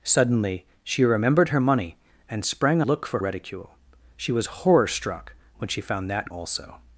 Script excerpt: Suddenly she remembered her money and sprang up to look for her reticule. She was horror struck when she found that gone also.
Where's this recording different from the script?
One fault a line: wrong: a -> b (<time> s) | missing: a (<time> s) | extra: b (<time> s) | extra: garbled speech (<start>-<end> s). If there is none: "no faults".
missing: up to (2.8 s)
missing: her (3.2 s)
missing: gone (6.3 s)